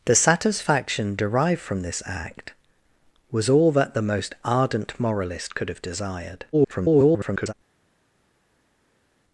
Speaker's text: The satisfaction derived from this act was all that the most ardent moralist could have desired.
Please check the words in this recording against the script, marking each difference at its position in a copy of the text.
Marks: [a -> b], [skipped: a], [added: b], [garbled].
The satisfaction derived from this act was all that the most ardent moralist could have desired. [garbled]